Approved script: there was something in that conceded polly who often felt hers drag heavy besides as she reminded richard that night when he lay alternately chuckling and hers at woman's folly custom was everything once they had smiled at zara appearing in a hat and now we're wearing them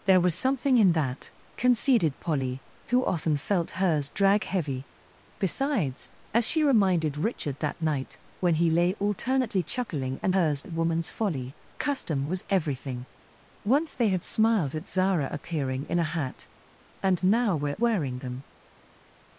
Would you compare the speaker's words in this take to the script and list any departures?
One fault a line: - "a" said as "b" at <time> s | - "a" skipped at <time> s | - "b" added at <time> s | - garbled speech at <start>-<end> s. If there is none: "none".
none